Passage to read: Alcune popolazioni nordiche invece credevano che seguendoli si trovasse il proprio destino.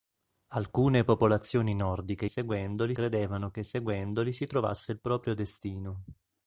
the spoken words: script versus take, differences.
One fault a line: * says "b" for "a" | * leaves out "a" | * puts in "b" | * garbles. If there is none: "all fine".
* says "seguendoli" for "invece"